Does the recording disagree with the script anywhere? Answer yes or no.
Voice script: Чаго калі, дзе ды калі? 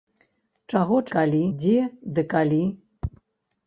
no